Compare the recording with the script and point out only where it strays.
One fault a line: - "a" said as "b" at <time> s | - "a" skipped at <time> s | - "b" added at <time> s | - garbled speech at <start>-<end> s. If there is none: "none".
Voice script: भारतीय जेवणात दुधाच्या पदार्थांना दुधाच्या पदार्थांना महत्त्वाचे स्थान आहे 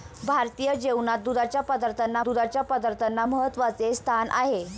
none